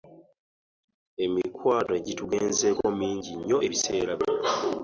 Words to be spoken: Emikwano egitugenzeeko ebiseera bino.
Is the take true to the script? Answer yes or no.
no